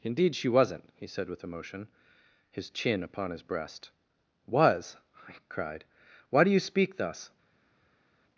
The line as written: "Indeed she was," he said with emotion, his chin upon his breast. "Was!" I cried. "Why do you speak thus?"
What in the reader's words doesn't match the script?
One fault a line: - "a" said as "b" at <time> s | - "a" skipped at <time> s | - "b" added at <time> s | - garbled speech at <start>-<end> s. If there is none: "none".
- "was" said as "wasn't" at 0.5 s